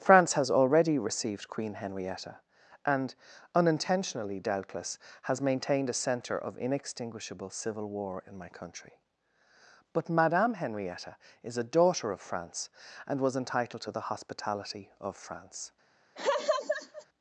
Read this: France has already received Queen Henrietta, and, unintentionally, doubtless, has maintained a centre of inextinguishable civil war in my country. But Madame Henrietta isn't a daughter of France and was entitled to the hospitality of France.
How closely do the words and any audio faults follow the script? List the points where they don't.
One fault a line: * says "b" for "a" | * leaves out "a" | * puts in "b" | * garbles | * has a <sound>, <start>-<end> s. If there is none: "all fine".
* says "is" for "isn't"
* has a laugh, 16.2-17.1 s